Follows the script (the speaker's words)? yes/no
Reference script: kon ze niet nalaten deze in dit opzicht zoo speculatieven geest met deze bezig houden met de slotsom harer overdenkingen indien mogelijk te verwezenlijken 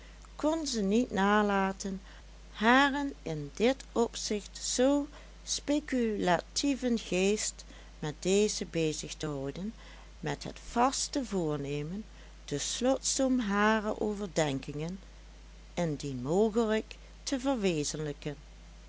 no